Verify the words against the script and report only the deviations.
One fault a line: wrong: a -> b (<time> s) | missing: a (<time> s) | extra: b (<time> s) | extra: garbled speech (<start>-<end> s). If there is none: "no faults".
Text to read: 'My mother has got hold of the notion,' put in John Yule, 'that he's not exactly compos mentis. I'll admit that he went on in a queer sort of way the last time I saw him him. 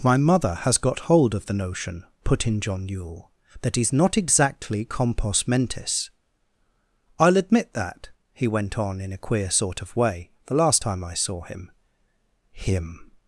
no faults